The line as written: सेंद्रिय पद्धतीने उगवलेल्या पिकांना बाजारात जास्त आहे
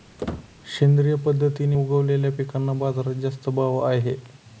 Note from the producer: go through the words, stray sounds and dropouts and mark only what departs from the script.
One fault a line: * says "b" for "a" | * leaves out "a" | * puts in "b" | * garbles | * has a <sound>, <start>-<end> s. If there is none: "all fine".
* has a squeak, 0.2-0.5 s
* puts in "भाव"